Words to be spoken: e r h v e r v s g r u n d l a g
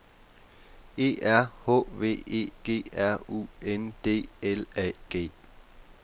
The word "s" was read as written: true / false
false